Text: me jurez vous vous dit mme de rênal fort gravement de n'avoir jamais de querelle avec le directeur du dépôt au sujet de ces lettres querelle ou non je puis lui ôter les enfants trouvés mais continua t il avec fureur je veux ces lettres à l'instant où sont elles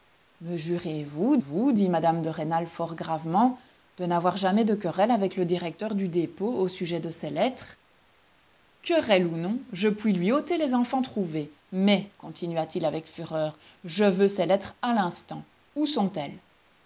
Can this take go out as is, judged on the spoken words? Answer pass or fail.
pass